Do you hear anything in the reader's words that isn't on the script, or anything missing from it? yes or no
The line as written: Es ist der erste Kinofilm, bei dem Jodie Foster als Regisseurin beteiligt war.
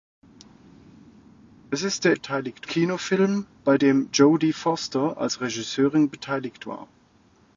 yes